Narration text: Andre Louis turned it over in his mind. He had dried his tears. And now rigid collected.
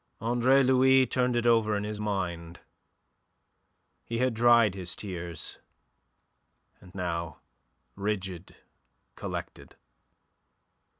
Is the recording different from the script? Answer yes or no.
no